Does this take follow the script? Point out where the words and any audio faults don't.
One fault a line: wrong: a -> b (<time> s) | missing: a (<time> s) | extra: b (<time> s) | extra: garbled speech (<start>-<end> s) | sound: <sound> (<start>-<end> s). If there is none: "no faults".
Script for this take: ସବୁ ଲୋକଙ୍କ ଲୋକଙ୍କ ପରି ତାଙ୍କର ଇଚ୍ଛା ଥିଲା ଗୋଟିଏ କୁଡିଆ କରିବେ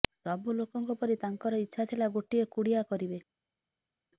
missing: ଲୋକଙ୍କ (0.9 s)